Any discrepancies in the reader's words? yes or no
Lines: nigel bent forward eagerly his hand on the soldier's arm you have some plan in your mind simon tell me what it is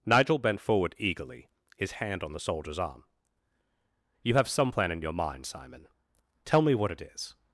no